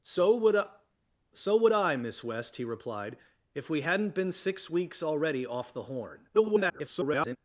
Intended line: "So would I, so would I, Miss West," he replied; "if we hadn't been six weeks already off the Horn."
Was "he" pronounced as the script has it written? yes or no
yes